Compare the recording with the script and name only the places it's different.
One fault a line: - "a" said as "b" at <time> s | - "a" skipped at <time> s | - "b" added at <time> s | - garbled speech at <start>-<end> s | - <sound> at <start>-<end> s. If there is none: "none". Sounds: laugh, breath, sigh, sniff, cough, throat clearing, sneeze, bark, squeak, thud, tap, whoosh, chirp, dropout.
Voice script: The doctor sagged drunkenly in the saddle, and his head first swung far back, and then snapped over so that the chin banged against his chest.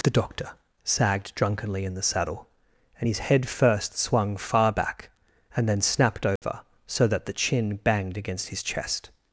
- dropout at 6.4-6.4 s